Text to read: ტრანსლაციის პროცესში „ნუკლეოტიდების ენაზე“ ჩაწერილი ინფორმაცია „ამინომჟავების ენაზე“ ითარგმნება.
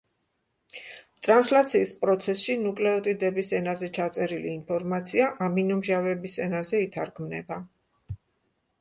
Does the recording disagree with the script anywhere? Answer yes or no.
no